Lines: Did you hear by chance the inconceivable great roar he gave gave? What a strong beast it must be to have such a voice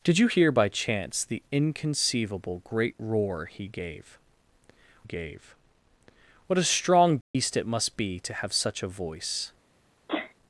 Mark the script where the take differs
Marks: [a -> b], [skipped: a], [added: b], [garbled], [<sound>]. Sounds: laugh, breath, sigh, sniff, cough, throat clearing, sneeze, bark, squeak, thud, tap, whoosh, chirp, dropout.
Did you hear by chance the inconceivable great roar he gave gave? What a strong beast [dropout] it must be to have such a voice [sneeze]